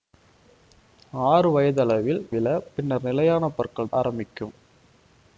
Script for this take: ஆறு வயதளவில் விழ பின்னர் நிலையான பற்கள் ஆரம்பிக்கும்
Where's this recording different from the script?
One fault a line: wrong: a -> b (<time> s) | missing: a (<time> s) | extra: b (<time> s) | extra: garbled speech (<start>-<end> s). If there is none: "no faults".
no faults